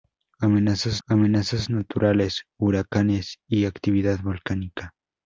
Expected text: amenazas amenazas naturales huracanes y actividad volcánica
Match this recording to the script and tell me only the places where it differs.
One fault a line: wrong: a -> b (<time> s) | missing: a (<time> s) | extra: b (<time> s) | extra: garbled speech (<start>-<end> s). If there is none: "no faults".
no faults